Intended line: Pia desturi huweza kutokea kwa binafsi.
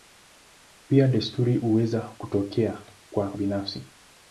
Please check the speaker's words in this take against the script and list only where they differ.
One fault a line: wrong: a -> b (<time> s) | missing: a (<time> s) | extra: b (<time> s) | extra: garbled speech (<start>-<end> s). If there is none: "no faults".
no faults